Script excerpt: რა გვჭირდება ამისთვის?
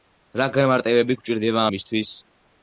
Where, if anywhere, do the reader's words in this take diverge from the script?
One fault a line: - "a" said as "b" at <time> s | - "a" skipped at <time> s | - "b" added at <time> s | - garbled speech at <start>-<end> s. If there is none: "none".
- "განმარტებები" added at 0.6 s